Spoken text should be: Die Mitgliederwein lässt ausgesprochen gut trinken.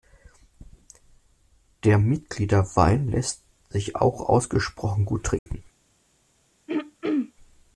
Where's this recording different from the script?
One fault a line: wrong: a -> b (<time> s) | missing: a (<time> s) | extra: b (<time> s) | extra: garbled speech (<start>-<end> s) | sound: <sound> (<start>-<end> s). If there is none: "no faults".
wrong: Die -> Der (1.8 s)
extra: sich auch (3.7 s)
sound: dropout (5.4-5.5 s)
sound: throat clearing (6.7-7.3 s)